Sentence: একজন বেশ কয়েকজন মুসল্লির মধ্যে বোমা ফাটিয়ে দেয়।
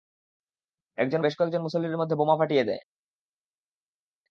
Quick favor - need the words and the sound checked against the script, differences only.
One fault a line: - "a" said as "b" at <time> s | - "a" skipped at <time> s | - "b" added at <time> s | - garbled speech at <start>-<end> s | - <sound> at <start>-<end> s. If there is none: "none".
none